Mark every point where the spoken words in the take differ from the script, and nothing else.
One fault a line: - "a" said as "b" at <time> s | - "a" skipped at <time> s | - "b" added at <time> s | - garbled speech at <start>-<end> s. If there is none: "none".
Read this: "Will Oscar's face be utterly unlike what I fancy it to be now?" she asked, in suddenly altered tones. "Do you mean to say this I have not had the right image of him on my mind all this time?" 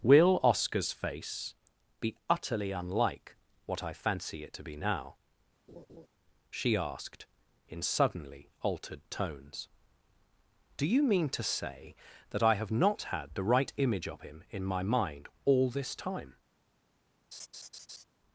- "this" said as "that" at 12.3 s
- "on" said as "in" at 14.5 s